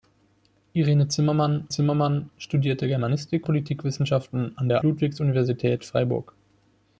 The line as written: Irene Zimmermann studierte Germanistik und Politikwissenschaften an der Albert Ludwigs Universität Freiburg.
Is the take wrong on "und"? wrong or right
wrong